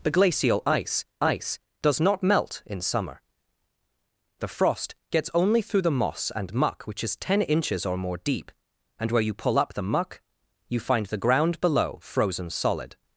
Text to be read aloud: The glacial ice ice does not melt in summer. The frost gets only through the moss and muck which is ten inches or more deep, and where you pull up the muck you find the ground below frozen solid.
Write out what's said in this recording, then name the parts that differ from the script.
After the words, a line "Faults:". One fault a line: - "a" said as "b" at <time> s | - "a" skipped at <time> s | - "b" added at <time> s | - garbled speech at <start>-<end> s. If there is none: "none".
The glacial ice ice does not melt in summer. The frost gets only through the moss and muck which is ten inches or more deep, and where you pull up the muck you find the ground below frozen solid.
Faults:
none